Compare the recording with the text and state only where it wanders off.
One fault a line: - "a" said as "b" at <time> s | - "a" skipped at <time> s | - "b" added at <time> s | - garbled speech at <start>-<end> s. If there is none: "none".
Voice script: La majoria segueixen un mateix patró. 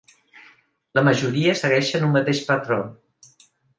none